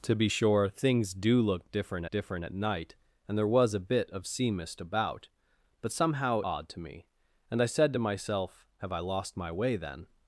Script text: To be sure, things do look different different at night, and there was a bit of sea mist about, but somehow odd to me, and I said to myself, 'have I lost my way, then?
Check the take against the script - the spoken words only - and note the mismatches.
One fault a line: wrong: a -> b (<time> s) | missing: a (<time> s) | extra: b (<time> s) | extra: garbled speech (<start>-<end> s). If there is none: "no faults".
no faults